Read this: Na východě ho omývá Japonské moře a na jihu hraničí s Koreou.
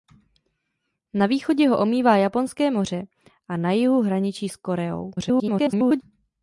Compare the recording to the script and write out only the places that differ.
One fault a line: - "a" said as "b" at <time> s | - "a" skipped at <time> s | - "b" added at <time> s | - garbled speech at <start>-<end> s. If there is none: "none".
- garbled speech at 5.2-6.0 s